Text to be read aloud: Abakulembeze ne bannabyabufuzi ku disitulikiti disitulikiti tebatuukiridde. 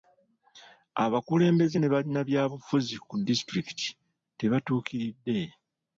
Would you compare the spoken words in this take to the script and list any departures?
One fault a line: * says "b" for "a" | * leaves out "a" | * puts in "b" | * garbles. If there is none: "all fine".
* leaves out "disitulikiti"